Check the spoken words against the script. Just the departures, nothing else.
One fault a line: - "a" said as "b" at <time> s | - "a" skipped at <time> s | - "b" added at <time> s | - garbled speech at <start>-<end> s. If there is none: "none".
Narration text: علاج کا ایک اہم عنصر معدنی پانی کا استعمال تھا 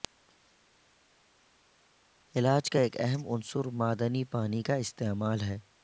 - "تھا" said as "ہے" at 5.4 s